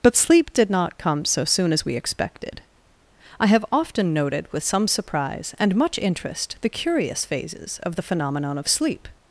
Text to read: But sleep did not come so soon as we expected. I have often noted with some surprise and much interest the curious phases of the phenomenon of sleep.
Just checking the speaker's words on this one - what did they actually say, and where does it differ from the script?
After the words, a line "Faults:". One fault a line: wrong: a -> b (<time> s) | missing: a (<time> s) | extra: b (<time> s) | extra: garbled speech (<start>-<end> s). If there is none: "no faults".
But sleep did not come so soon as we expected. I have often noted with some surprise and much interest the curious phases of the phenomenon of sleep.
Faults:
no faults